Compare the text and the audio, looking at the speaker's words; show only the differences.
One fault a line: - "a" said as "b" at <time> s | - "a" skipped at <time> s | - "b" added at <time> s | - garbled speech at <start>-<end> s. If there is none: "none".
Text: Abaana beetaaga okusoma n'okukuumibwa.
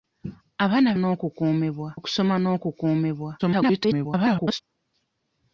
- "beetaaga" said as "n'okukuumibwa" at 1.0 s
- garbled speech at 3.4-4.6 s